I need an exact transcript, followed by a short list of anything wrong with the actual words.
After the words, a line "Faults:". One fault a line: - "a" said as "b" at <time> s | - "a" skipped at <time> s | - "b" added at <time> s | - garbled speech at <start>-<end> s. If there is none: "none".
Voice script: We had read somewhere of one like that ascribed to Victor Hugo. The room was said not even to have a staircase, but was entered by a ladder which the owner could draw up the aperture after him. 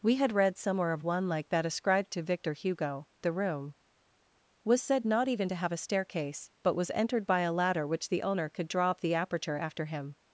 We had read somewhere of one like that ascribed to Victor Hugo. The room was said not even to have a staircase, but was entered by a ladder which the owner could draw up the aperture after him.
Faults:
none